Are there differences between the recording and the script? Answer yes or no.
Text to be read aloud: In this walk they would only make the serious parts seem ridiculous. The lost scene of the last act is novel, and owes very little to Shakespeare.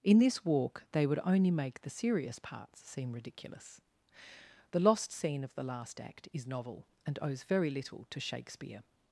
no